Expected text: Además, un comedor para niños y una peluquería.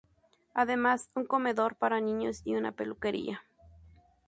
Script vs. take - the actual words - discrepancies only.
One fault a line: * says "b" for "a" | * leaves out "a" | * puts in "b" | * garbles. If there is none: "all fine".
all fine